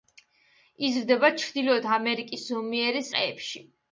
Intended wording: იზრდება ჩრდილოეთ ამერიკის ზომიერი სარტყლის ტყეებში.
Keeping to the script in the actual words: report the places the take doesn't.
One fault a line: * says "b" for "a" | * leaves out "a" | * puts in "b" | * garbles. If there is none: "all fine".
* leaves out "სარტყლის"